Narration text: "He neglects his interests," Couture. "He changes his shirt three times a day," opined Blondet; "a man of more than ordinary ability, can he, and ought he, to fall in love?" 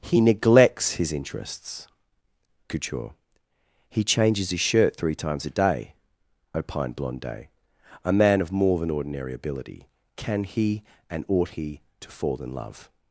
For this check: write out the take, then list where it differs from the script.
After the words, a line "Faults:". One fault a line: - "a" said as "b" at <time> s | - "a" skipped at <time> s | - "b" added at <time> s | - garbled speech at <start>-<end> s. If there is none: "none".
"He neglects his interests," Couture. "He changes his shirt three times a day," opined Blondet; "a man of more than ordinary ability, can he, and ought he, to fall in love?"
Faults:
none